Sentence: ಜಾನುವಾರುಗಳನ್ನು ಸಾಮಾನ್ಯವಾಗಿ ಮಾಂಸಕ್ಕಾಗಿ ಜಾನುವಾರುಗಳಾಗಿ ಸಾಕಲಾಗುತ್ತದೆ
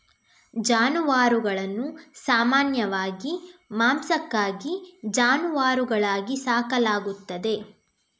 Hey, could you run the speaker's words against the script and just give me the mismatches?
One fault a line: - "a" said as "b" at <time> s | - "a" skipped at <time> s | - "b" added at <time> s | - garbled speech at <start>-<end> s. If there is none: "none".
none